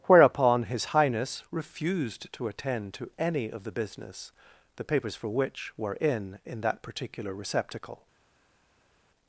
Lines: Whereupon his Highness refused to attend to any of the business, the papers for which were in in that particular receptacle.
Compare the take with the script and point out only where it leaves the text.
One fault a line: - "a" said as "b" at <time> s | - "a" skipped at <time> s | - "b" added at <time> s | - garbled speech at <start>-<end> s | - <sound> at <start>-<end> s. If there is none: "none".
none